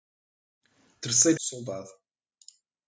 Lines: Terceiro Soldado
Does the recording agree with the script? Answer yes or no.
yes